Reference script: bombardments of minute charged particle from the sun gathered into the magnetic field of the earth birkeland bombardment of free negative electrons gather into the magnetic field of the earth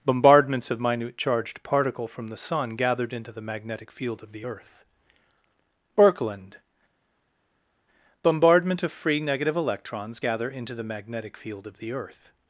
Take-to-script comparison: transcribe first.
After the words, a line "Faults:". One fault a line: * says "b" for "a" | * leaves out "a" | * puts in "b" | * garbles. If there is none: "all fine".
bombardments of minute charged particle from the sun gathered into the magnetic field of the earth birkeland bombardment of free negative electrons gather into the magnetic field of the earth
Faults:
all fine